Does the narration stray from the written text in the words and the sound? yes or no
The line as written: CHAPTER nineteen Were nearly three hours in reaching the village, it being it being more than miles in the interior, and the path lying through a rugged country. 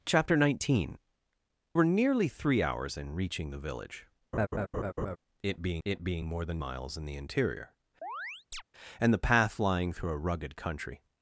yes